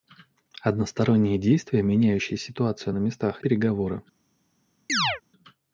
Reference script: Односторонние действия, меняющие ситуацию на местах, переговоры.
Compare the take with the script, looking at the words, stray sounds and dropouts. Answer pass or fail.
fail